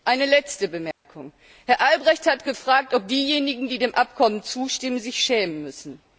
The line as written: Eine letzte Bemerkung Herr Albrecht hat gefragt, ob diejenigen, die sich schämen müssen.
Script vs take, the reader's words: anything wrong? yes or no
yes